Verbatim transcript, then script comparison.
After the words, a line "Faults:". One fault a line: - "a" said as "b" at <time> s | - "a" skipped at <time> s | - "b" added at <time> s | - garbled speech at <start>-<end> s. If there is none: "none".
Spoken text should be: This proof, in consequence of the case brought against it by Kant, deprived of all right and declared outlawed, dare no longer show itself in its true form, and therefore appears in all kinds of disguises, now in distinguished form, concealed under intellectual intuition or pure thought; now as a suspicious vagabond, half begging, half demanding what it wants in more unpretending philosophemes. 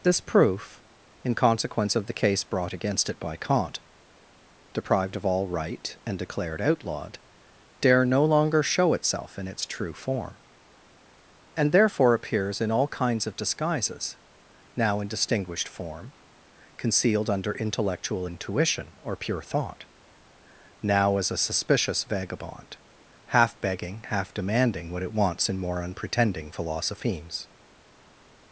This proof, in consequence of the case brought against it by Kant, deprived of all right and declared outlawed, dare no longer show itself in its true form, and therefore appears in all kinds of disguises, now in distinguished form, concealed under intellectual intuition or pure thought; now as a suspicious vagabond, half begging, half demanding what it wants in more unpretending philosophemes.
Faults:
none